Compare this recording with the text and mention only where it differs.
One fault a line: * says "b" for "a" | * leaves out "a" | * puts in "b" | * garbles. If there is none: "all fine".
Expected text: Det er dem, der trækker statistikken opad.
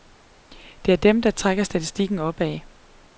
all fine